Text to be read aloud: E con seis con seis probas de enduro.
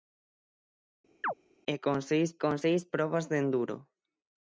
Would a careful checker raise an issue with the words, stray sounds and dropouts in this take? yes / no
yes